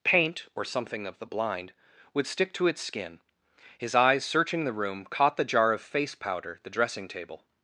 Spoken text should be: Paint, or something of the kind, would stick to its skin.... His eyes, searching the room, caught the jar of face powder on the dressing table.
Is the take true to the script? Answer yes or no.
no